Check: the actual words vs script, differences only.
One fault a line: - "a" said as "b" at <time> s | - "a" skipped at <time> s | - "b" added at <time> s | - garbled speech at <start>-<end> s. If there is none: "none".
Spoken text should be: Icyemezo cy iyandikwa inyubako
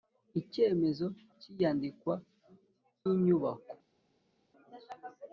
none